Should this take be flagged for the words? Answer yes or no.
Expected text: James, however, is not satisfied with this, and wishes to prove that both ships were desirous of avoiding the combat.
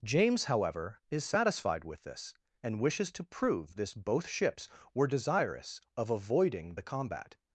yes